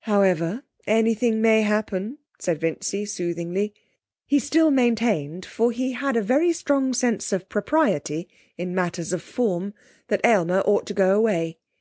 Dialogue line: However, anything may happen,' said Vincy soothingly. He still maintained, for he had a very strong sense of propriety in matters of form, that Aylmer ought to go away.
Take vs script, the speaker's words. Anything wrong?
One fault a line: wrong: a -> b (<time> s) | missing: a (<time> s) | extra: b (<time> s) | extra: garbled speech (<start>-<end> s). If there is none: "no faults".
no faults